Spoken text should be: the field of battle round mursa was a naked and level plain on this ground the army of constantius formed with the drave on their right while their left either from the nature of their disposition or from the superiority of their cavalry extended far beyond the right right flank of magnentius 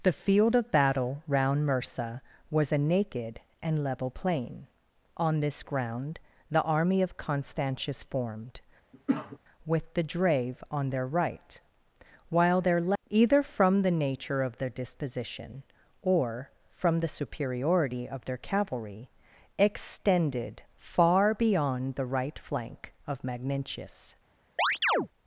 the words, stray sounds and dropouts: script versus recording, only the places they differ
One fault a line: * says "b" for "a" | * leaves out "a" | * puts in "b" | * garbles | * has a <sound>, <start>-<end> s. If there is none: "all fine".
* has a cough, 8.9-9.4 s
* leaves out "right"
* has a chirp, 24.6-25.1 s